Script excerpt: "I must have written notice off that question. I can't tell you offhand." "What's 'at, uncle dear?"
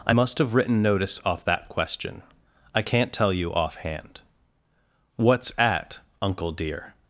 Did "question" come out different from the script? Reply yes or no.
no